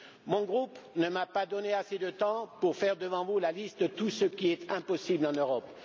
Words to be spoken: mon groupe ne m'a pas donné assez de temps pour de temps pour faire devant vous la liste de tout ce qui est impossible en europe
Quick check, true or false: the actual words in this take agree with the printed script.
false